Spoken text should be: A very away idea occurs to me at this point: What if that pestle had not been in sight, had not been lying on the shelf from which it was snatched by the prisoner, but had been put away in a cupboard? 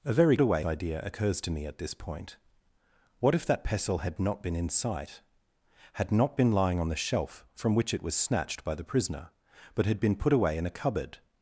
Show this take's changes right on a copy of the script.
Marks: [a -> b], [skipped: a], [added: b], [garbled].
A very away idea occurs to me at this point: What if that pestle had not been in sight, had not been lying on the shelf from which it was snatched by the prisoner, but had been put away in a cupboard?